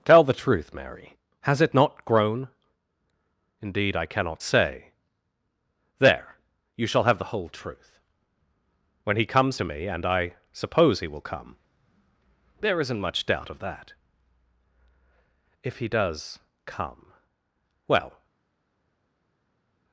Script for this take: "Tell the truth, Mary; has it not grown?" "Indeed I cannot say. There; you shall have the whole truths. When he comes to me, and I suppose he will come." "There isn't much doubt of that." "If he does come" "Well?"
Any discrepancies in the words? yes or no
yes